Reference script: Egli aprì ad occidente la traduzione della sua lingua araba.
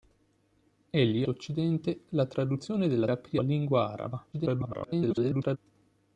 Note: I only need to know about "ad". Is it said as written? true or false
false